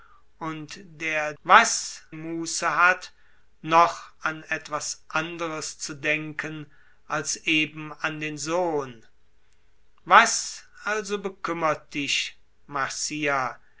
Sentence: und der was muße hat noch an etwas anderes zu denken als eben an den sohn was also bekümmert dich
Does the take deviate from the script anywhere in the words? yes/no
no